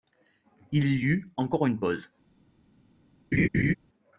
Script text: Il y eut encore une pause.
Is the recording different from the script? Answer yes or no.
no